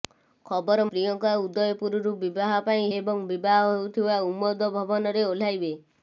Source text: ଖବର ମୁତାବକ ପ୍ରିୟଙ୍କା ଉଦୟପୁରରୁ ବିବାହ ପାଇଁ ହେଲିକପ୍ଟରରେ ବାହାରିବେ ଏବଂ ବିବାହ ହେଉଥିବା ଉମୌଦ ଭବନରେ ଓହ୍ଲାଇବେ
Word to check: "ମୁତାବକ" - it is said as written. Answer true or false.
false